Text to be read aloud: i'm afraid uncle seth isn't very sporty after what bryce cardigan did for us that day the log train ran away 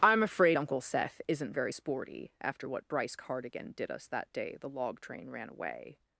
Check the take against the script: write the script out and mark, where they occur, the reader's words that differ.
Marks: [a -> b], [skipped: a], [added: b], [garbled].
i'm afraid uncle seth isn't very sporty after what bryce cardigan did [skipped: for] us that day the log train ran away